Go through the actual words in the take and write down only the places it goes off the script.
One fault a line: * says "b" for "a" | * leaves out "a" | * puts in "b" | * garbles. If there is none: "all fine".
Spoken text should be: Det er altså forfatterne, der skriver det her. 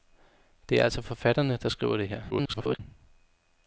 * garbles